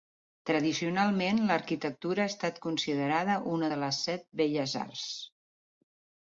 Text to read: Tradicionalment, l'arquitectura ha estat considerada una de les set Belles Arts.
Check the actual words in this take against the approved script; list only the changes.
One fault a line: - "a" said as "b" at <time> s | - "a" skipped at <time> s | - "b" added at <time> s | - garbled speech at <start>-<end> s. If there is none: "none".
none